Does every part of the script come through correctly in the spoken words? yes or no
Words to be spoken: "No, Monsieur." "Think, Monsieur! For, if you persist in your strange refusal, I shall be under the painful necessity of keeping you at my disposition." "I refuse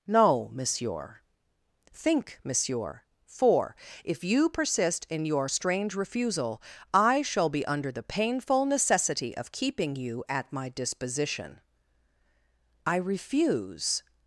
yes